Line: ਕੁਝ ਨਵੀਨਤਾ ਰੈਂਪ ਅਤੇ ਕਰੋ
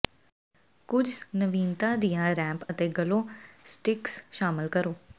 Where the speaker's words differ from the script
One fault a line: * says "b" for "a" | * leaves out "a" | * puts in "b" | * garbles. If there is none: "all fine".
* puts in "ਦੀਆਂ"
* puts in "ਗਲੋ ਸਟਿਕਸ ਸ਼ਾਮਲ"